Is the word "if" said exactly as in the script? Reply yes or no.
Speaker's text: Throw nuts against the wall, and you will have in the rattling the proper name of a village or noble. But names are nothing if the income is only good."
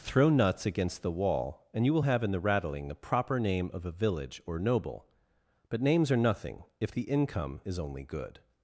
yes